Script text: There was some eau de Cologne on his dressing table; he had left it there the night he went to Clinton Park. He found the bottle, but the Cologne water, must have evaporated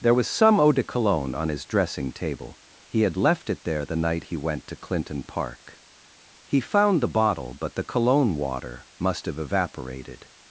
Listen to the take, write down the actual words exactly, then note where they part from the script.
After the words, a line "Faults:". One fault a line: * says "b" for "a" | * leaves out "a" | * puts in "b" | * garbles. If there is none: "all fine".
There was some eau de Cologne on his dressing table; he had left it there the night he went to Clinton Park. He found the bottle, but the Cologne water, must have evaporated
Faults:
all fine